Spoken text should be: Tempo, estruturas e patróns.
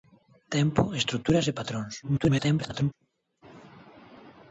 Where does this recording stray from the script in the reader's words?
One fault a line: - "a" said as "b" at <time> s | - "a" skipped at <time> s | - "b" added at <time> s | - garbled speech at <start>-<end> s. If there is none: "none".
- garbled speech at 2.0-2.9 s